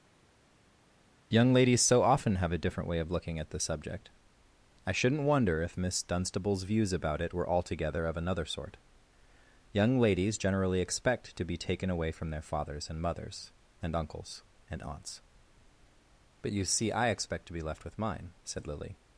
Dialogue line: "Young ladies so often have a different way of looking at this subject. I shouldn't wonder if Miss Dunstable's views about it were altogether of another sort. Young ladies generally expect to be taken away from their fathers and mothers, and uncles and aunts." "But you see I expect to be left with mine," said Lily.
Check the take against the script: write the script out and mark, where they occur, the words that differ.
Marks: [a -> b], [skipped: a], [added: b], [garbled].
"Young ladies so often have a different way of looking at this subject. I shouldn't wonder if Miss Dunstable's views about it were altogether of another sort. Young ladies generally expect to be taken away from their fathers and mothers, and uncles and aunts." "But you see I expect to be left with mine," said Lily.